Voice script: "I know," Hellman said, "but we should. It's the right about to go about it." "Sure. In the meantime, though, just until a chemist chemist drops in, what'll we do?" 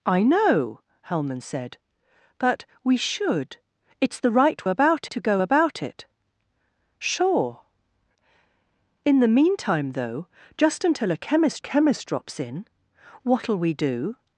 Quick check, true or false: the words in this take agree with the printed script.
true